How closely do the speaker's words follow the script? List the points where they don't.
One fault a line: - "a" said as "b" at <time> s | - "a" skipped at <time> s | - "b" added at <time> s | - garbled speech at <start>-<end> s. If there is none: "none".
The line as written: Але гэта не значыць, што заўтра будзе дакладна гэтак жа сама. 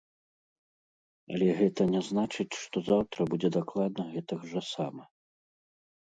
none